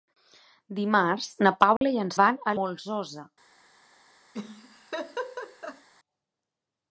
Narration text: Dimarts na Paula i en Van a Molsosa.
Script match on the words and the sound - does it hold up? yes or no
no